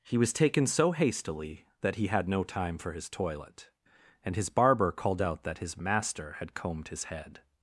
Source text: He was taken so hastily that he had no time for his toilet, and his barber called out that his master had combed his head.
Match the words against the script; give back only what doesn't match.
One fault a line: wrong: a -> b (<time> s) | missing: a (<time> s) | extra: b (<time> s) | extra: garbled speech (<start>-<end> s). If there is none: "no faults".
no faults